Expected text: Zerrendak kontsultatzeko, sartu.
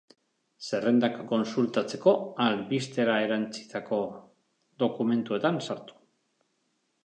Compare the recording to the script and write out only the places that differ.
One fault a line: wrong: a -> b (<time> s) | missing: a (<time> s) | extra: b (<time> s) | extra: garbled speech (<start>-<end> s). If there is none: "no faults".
extra: albistera erantsitako dokumentuetan (2.5 s)